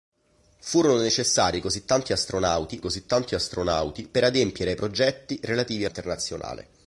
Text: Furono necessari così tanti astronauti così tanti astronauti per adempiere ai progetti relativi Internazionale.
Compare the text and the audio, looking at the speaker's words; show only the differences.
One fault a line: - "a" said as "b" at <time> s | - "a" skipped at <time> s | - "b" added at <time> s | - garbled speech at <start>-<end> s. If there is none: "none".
none